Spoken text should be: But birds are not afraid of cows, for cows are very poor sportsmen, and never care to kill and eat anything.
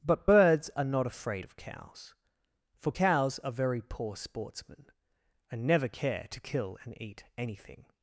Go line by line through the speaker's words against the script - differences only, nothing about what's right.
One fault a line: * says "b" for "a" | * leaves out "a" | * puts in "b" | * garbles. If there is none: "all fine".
all fine